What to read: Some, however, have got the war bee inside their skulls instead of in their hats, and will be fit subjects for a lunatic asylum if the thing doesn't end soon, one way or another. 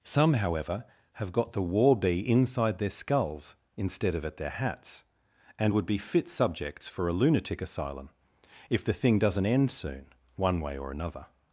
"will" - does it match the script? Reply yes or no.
no